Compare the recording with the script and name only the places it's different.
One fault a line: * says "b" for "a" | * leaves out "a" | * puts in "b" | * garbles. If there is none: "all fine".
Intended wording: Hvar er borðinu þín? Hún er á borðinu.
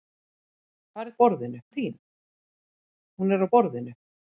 all fine